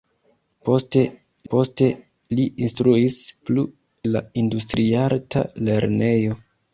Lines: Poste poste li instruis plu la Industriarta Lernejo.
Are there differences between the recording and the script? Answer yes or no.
no